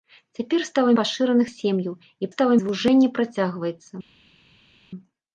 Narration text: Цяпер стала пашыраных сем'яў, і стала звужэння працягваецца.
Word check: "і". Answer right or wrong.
right